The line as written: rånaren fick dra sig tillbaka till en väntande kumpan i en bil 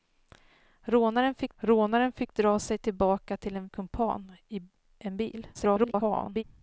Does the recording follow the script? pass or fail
fail